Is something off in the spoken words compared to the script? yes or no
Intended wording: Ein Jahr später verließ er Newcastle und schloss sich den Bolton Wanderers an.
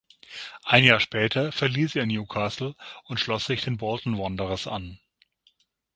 no